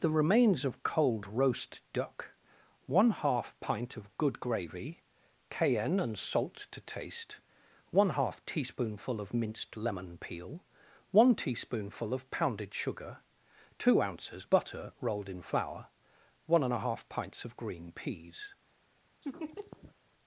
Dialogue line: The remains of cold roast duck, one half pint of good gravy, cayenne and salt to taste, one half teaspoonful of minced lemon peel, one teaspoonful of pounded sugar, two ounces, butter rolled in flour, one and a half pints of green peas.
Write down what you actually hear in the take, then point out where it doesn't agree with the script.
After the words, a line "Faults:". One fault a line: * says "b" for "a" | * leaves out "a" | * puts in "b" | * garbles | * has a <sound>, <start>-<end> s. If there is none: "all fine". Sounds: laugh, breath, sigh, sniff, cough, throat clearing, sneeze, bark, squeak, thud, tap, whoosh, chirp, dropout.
The remains of cold roast duck, one half pint of good gravy, cayenne and salt to taste, one half teaspoonful of minced lemon peel, one teaspoonful of pounded sugar, two ounces, butter rolled in flour, one and a half pints of green peas.
Faults:
* has a laugh, 19.2-20.0 s